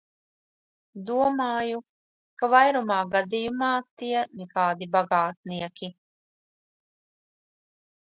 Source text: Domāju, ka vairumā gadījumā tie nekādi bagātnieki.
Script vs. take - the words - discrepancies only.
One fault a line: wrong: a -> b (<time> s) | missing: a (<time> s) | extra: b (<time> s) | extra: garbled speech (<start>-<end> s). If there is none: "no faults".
no faults